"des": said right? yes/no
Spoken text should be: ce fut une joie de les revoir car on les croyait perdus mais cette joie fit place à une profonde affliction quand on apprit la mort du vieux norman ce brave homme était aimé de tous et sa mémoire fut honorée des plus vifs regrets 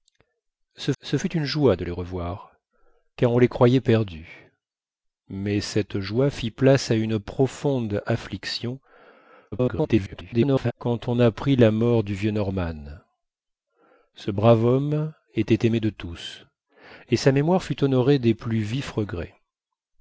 yes